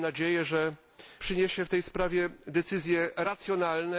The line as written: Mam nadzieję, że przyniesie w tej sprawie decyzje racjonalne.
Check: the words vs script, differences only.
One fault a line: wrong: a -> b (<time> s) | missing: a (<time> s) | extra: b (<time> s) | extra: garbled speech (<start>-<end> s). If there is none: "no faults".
no faults